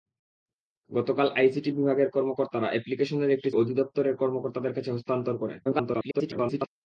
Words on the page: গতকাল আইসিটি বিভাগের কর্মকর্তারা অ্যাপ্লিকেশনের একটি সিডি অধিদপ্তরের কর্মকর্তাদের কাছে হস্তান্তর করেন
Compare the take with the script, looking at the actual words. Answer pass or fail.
fail